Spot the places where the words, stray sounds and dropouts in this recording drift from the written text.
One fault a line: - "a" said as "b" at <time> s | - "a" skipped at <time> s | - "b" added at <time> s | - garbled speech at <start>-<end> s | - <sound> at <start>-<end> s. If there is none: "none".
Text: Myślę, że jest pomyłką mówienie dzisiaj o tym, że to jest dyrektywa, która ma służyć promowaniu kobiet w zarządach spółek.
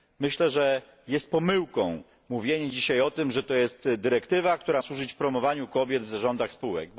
- "ma" skipped at 4.8 s